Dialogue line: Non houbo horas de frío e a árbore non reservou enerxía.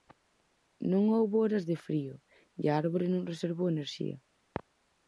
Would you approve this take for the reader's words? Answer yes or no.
yes